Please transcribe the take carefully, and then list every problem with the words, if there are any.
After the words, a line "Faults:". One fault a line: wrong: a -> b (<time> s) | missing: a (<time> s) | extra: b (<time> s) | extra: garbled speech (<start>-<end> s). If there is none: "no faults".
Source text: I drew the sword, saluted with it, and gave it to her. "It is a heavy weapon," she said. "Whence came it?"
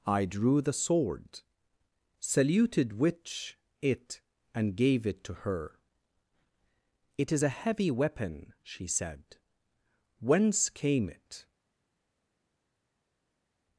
I drew the sword, saluted which it, and gave it to her. "It is a heavy weapon," she said. "Whence came it?"
Faults:
wrong: with -> which (2.9 s)